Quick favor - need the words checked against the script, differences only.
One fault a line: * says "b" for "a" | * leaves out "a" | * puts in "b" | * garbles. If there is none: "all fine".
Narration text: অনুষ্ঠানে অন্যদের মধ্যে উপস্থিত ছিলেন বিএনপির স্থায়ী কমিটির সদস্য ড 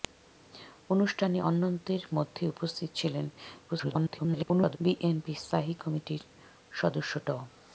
* garbles